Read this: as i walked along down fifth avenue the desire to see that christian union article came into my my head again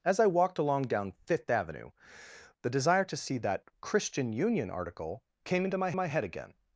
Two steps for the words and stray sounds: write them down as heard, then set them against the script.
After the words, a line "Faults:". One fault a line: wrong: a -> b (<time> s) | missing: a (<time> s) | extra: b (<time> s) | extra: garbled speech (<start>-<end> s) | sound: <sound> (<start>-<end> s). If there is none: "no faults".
as i walked along down fifth avenue the desire to see that christian union article came into my my head again
Faults:
no faults